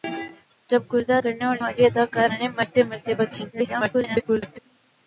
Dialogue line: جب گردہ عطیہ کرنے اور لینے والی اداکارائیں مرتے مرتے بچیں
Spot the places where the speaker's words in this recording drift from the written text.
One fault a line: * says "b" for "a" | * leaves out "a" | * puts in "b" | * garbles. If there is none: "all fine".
* leaves out "عطیہ"
* leaves out "لینے"
* garbles